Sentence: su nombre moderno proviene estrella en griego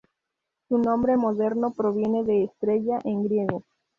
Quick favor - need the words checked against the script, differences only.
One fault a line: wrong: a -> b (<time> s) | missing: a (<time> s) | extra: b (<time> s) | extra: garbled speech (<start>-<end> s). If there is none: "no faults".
extra: de (2.2 s)